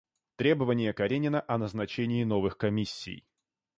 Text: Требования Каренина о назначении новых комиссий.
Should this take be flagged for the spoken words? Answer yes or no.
no